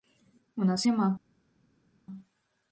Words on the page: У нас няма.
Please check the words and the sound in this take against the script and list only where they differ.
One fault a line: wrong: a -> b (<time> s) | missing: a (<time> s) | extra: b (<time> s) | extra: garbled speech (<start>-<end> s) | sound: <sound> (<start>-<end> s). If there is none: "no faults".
no faults